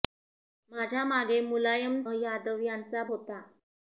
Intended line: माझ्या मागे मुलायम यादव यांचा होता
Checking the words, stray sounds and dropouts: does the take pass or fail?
pass